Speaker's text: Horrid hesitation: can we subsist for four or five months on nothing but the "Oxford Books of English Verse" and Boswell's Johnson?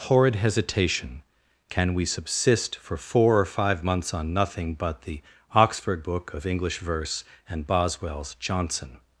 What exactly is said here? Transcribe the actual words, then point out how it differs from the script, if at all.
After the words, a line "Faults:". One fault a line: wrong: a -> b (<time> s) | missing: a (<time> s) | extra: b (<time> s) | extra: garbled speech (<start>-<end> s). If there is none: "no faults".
Horrid hesitation: can we subsist for four or five months on nothing but the "Oxford Book of English Verse" and Boswell's Johnson?
Faults:
wrong: Books -> Book (6.0 s)